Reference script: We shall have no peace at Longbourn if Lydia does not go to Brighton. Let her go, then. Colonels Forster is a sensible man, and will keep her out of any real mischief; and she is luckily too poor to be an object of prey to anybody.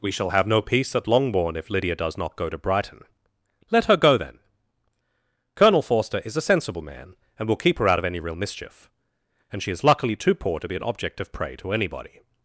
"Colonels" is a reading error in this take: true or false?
true